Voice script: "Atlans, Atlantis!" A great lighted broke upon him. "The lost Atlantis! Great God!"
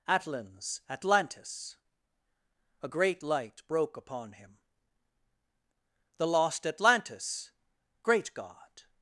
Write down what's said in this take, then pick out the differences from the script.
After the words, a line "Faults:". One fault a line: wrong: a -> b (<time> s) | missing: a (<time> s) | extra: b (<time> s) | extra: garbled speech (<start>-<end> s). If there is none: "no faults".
"Atlans, Atlantis!" A great light broke upon him. "The lost Atlantis! Great God!"
Faults:
wrong: lighted -> light (3.2 s)